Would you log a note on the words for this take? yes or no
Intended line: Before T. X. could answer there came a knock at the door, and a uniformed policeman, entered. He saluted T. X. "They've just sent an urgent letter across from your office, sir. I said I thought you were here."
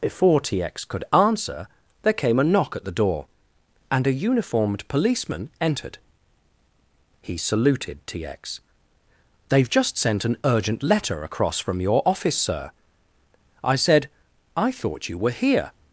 no